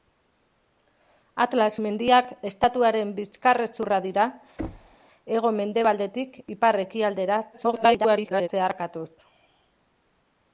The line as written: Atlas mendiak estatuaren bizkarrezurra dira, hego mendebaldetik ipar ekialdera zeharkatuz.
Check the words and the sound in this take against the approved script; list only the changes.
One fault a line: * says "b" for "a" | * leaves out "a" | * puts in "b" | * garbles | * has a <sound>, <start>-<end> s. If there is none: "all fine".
* has a thud, 4.6-5.0 s
* garbles